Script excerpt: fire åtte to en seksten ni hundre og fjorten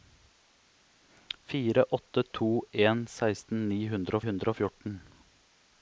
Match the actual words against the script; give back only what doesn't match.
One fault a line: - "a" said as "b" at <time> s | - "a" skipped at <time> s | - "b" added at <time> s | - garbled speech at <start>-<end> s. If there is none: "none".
- "hundre" added at 4.3 s